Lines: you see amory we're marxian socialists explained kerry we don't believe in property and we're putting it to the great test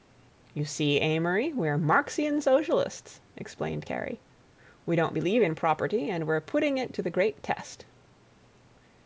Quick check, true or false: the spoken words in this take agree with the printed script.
true